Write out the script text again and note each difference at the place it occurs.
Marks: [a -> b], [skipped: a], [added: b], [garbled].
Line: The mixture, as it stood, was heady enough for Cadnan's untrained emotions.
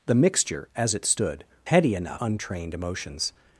The mixture, as it stood, [skipped: was] heady enough [skipped: for Cadnan's] untrained emotions.